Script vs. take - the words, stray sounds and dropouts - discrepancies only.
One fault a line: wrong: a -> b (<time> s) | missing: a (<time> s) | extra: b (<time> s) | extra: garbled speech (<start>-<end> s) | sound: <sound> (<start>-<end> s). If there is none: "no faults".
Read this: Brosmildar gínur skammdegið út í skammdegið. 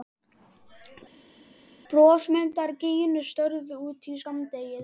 wrong: skammdegið -> störðu (3.3 s)